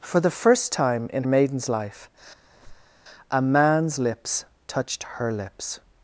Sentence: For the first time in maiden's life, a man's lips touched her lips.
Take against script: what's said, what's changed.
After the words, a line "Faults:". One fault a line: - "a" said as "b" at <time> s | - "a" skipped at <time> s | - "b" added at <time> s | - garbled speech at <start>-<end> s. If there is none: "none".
For the first time in maiden's life, a man's lips touched her lips.
Faults:
none